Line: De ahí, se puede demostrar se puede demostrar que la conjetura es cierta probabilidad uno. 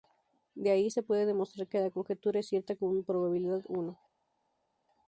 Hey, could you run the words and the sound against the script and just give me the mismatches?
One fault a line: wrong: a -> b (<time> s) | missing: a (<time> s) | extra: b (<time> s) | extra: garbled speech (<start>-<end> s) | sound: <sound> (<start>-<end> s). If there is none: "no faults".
missing: se puede demostrar (1.7 s)
extra: con (2.8 s)